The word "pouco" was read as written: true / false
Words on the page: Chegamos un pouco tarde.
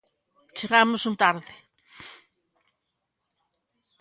false